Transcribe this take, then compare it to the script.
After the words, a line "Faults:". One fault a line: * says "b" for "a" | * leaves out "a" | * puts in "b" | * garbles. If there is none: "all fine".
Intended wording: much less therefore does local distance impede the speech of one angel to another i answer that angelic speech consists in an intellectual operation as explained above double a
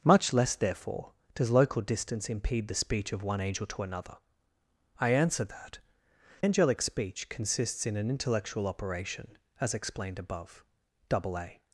much less therefore does local distance impede the speech of one angel to another i answer that angelic speech consists in an intellectual operation as explained above double a
Faults:
all fine